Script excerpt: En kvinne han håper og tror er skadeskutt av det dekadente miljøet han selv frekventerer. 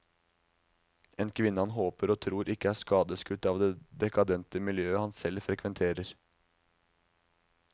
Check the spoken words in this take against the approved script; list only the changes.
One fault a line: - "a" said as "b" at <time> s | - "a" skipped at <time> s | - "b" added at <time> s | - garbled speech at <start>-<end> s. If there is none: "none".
- "ikke" added at 2.5 s